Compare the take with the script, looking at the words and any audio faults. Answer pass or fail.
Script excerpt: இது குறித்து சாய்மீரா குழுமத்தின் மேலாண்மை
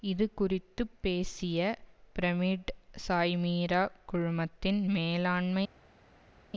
fail